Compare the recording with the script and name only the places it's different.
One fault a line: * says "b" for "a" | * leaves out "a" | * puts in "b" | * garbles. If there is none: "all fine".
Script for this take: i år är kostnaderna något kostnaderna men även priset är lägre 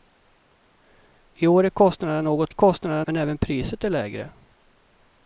all fine